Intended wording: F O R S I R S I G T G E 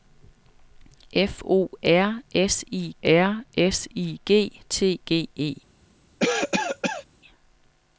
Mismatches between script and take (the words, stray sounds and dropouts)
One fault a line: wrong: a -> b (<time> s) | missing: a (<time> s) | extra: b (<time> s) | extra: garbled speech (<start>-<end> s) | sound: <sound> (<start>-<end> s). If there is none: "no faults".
sound: cough (6.2-7.1 s)